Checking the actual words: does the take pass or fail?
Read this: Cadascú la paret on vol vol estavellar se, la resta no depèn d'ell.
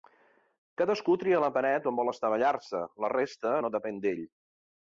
fail